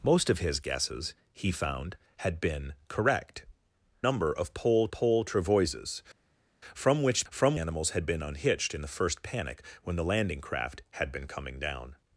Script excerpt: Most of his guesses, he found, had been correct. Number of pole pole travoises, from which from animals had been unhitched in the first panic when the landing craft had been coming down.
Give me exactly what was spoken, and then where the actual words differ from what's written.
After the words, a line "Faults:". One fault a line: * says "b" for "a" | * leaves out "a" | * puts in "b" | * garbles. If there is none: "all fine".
Most of his guesses, he found, had been correct. Number of pole pole travoises, from which from animals had been unhitched in the first panic when the landing craft had been coming down.
Faults:
all fine